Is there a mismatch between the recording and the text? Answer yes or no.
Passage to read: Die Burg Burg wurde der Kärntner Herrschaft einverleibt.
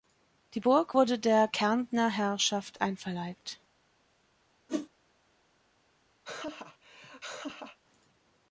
yes